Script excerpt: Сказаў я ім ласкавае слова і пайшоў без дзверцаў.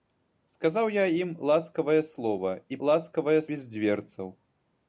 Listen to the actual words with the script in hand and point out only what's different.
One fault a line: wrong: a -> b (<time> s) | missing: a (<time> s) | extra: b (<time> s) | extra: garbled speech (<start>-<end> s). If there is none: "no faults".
wrong: пайшоў -> ласкавае (2.9 s)